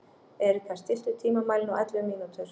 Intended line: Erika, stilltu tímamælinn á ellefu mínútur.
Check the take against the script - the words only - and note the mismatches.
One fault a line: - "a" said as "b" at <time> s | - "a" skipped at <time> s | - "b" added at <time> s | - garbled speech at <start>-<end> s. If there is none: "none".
none